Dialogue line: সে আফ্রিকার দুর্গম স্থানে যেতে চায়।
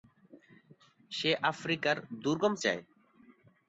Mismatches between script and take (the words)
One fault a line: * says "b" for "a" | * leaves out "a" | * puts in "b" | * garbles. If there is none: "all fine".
* leaves out "স্থানে যেতে"